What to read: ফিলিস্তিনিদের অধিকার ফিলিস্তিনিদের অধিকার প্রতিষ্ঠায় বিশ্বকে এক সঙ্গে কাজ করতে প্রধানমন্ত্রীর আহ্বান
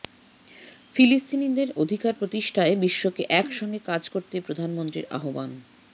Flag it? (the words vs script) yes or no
yes